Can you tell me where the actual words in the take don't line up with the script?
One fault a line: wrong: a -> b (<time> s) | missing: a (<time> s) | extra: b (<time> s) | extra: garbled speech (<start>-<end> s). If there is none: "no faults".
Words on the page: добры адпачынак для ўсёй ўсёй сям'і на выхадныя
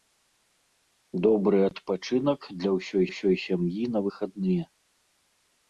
no faults